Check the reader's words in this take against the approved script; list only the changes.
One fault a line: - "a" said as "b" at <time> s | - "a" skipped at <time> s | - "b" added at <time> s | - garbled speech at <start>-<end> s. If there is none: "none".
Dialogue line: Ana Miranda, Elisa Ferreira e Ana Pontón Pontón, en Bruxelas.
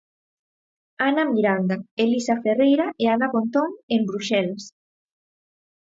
- "Pontón" skipped at 3.7 s